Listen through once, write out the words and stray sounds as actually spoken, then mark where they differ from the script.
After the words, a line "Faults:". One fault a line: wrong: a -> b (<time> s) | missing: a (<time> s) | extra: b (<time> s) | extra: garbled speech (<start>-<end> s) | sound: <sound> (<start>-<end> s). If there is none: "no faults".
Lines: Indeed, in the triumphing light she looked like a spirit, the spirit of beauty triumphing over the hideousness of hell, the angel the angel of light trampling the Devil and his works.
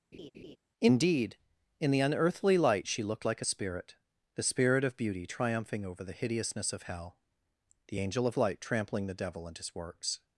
Indeed, in the unearthly light she looked like a spirit, the spirit of beauty triumphing over the hideousness of hell, the angel of light trampling the Devil and his works.
Faults:
sound: laugh (0.1-0.6 s)
wrong: triumphing -> unearthly (2.0 s)
missing: the angel (8.3 s)